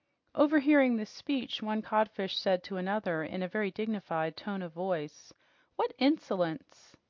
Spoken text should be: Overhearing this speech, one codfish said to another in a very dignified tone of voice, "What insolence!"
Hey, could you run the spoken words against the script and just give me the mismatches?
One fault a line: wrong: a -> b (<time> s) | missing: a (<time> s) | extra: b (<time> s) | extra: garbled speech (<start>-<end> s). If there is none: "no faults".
no faults